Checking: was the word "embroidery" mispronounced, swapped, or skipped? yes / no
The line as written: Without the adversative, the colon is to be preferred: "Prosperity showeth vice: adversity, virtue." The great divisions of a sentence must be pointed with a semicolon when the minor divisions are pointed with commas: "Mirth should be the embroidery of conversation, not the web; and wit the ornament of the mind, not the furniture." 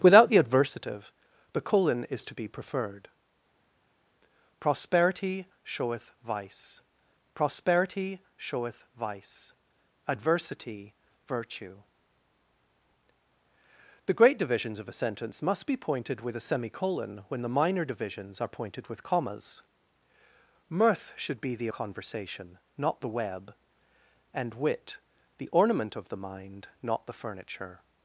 yes